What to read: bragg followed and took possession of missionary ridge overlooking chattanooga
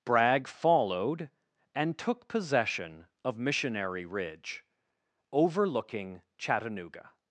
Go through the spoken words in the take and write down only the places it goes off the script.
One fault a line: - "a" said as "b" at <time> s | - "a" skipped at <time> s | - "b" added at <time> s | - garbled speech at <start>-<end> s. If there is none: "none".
none